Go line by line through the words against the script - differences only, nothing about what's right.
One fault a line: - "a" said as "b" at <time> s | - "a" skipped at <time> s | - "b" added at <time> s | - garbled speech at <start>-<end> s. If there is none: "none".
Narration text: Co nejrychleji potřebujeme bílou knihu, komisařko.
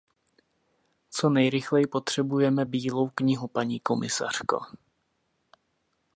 - "paní" added at 3.5 s